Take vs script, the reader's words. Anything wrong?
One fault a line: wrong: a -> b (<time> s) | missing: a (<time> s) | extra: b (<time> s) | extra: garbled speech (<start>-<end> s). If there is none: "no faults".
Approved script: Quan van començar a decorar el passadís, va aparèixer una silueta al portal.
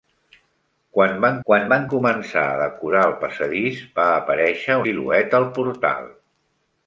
extra: quan van (1.5 s)
missing: una (4.8 s)